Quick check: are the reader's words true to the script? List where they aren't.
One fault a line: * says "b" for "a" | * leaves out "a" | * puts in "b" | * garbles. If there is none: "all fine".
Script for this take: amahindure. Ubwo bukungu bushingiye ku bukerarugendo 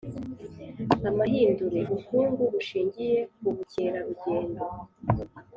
* leaves out "Ubwo"